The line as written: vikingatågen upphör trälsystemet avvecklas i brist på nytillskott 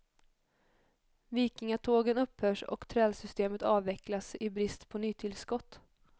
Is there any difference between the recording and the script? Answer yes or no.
yes